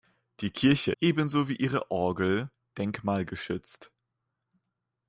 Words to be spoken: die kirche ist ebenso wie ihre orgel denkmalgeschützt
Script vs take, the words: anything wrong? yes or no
yes